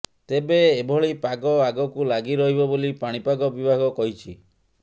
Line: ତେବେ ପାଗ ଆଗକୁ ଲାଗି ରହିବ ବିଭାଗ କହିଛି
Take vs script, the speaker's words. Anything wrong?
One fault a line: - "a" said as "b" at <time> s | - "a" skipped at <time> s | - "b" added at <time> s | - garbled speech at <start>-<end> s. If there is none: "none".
- "ଏଭଳି" added at 0.7 s
- "ବୋଲି ପାଣିପାଗ" added at 2.7 s